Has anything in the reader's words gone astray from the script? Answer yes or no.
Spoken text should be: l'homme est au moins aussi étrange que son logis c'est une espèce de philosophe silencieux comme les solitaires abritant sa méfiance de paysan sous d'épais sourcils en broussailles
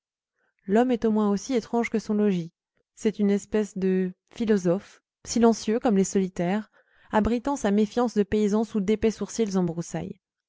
no